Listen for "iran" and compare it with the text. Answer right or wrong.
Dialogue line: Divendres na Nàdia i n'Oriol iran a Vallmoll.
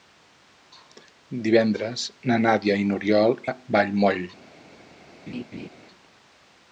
wrong